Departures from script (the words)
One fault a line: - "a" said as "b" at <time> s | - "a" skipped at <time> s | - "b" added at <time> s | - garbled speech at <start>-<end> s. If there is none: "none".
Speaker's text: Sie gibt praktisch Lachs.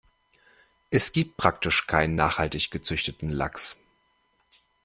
- "Sie" said as "Es" at 0.9 s
- "keinen nachhaltig gezüchteten" added at 1.8 s